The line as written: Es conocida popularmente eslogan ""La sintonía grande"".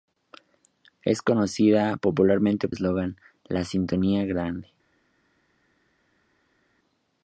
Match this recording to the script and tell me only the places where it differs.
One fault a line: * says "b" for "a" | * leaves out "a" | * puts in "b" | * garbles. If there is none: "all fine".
all fine